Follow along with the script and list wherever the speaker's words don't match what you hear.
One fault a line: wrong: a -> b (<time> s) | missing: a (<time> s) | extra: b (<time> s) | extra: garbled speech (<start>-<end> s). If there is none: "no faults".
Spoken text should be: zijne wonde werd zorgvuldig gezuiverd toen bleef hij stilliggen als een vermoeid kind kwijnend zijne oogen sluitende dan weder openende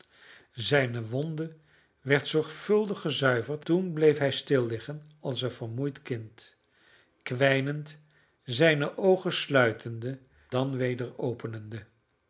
no faults